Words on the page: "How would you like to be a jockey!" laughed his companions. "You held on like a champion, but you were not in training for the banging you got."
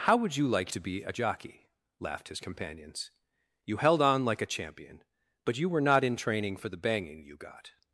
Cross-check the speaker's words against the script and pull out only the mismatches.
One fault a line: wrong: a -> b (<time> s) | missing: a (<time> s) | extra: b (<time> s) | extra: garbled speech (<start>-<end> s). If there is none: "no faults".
no faults